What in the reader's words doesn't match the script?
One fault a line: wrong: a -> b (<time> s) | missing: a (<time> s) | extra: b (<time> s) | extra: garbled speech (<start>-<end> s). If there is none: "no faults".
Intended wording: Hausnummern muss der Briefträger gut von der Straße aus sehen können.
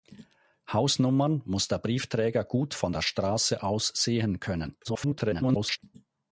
extra: garbled speech (4.8-5.8 s)